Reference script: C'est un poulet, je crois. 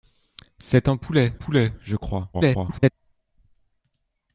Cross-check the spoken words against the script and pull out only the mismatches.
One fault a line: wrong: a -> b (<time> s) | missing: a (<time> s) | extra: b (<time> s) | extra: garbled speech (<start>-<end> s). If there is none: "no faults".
extra: poulet (1.3 s)
extra: garbled speech (2.3-2.9 s)